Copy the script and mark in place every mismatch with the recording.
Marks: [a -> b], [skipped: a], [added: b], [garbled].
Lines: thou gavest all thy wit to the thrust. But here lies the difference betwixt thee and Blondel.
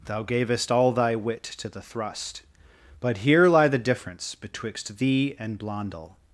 thou gavest all thy wit to the thrust. But here [lies -> lie] the difference betwixt thee and Blondel.